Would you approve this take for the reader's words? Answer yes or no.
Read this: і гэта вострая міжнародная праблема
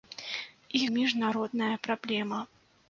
no